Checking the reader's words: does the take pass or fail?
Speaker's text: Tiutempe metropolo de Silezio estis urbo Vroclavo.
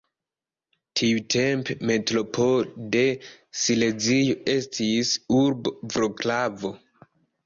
pass